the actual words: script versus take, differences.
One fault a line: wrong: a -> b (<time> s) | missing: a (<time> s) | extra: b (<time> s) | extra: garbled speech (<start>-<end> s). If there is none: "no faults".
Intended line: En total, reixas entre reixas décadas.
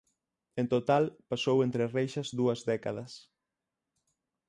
wrong: reixas -> pasou (1.3 s)
extra: dúas (2.4 s)